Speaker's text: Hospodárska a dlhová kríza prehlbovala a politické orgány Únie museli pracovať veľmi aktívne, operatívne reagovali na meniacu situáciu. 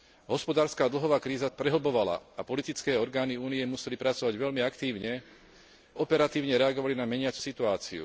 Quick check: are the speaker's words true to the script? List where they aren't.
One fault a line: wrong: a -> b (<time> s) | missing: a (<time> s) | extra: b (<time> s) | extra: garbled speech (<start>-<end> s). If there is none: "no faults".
no faults